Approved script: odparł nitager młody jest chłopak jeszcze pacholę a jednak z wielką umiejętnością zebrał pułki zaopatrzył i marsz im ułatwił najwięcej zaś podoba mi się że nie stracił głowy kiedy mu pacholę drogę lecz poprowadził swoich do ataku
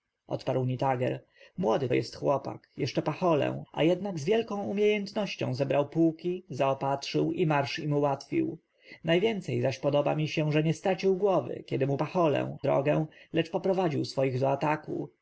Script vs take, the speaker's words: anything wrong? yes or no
no